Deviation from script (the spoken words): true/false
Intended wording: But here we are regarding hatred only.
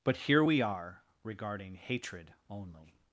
false